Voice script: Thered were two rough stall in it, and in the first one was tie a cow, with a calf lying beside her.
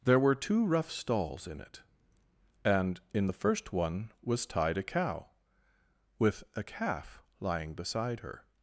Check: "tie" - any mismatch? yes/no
yes